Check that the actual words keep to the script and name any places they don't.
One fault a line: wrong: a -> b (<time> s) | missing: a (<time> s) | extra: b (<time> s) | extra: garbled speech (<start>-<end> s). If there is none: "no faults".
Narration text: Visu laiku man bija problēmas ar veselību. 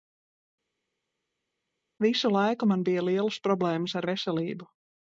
extra: lielas (3.1 s)